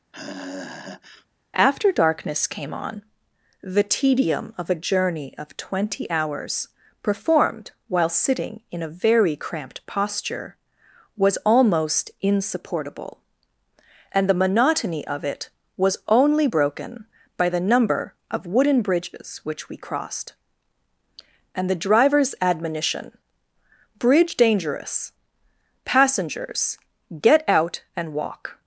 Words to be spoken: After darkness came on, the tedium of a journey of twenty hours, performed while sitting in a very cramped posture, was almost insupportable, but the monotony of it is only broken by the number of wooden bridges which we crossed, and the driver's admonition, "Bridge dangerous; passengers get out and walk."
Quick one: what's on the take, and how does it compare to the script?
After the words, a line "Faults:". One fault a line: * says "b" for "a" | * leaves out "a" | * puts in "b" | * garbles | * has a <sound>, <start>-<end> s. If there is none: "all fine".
After darkness came on, the tedium of a journey of twenty hours, performed while sitting in a very cramped posture, was almost insupportable, and the monotony of it was only broken by the number of wooden bridges which we crossed, and the driver's admonition, "Bridge dangerous; passengers get out and walk."
Faults:
* has a sigh, 0.1-1.3 s
* says "and" for "but"
* says "was" for "is"